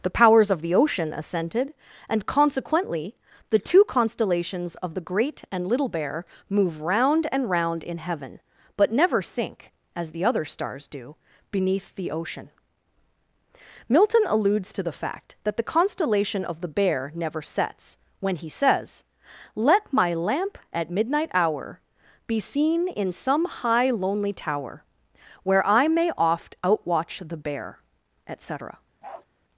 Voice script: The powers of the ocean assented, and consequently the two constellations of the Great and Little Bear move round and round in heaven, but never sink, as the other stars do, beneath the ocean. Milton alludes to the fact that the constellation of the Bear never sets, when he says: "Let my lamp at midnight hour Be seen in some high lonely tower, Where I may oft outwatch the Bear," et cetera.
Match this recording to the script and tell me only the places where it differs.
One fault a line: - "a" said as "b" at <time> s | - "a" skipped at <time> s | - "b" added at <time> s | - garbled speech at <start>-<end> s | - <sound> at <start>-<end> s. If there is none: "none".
- bark at 29.0-29.3 s